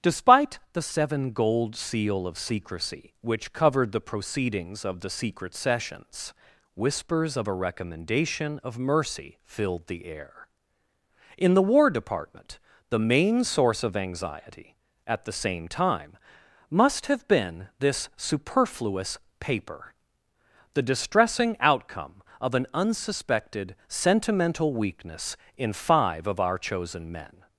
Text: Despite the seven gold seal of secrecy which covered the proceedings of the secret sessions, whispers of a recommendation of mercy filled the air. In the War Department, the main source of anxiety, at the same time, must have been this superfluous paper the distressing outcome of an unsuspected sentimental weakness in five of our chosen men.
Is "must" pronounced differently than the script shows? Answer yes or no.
no